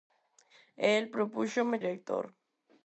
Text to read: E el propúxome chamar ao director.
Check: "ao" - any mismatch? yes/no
yes